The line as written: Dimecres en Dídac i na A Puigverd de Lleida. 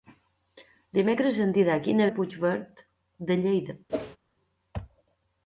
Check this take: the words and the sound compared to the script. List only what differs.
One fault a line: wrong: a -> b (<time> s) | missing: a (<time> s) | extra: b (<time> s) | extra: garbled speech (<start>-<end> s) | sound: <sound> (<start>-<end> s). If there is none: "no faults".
sound: whoosh (3.9-4.2 s)